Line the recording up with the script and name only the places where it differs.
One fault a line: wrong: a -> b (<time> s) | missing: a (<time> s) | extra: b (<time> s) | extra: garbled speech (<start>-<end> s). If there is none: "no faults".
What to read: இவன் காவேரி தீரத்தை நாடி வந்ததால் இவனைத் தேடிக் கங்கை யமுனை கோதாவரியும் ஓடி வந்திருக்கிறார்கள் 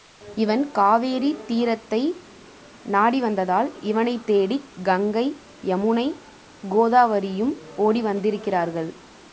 no faults